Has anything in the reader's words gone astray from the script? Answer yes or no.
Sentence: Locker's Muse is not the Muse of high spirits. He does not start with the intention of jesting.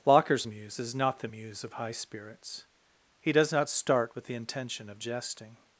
no